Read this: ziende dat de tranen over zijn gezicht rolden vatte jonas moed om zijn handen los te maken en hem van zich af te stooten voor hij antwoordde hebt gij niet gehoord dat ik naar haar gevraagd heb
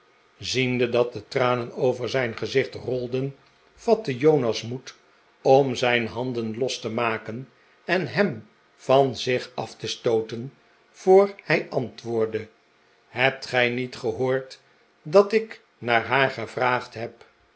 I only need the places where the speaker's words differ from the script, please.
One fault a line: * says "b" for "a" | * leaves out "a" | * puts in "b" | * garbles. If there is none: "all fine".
all fine